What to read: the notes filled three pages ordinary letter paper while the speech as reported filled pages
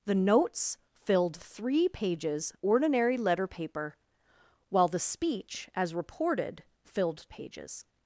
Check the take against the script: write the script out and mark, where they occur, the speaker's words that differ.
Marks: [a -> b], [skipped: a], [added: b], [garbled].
the notes filled three pages ordinary letter paper while the speech as reported filled pages